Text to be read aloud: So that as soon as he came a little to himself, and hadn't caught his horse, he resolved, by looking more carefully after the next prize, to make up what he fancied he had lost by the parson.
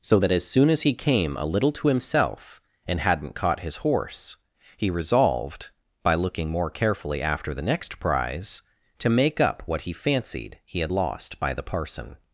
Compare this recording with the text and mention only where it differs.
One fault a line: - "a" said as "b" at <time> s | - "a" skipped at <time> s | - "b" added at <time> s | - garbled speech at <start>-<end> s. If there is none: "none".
none